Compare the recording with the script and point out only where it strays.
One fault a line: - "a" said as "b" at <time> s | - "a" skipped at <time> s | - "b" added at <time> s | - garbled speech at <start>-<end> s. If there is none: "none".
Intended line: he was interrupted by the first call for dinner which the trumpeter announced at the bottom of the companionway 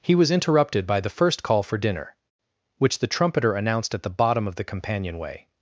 none